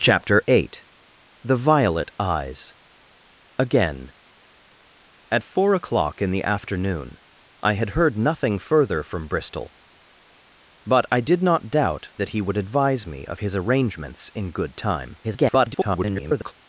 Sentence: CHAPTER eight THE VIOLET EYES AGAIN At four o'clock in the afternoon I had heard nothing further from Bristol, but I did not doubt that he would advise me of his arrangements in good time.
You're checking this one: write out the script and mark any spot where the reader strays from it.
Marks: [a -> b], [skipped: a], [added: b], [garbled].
CHAPTER eight THE VIOLET EYES AGAIN At four o'clock in the afternoon I had heard nothing further from Bristol, but I did not doubt that he would advise me of his arrangements in good time. [garbled]